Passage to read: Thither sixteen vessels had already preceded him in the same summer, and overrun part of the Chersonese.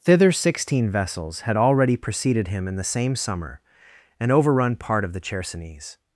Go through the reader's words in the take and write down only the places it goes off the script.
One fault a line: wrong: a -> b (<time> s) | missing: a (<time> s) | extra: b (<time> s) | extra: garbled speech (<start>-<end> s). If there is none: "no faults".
no faults